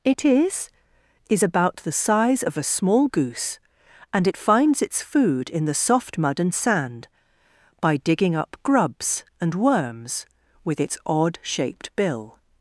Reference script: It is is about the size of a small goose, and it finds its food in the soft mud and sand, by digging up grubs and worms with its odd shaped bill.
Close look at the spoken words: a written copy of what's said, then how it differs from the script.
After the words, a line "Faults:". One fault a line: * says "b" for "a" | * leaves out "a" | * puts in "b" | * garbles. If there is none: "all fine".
It is is about the size of a small goose, and it finds its food in the soft mud and sand, by digging up grubs and worms with its odd shaped bill.
Faults:
all fine